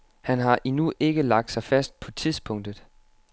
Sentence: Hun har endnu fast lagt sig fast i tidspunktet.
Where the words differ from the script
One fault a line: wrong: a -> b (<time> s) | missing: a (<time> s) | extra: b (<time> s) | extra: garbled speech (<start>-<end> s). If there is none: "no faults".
wrong: Hun -> Han (0.2 s)
wrong: fast -> ikke (1.0 s)
wrong: i -> på (2.0 s)